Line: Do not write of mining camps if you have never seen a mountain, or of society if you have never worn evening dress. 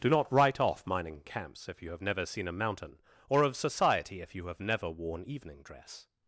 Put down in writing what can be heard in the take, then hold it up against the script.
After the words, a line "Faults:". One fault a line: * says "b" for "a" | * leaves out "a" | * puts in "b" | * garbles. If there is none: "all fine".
Do not write off mining camps if you have never seen a mountain, or of society if you have never worn evening dress.
Faults:
* says "off" for "of"